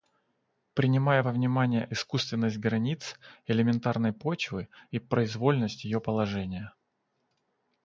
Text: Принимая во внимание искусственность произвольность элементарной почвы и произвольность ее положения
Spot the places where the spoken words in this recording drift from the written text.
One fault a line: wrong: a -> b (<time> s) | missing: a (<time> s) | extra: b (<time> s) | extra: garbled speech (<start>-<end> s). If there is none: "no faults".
wrong: произвольность -> границ (2.6 s)